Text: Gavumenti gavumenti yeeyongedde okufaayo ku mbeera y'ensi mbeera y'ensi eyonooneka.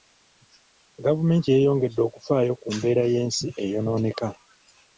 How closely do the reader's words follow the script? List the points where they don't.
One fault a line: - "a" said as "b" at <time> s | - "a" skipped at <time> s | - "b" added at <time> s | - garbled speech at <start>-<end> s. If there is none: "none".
- "gavumenti" skipped at 1.5 s
- "mbeera y'ensi" skipped at 3.5 s